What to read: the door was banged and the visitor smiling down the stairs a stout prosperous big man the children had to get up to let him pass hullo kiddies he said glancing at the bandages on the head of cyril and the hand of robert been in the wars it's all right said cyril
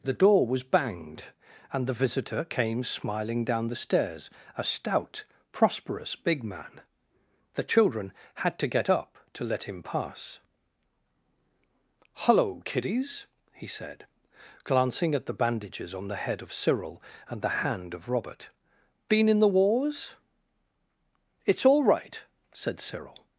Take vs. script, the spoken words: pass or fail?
fail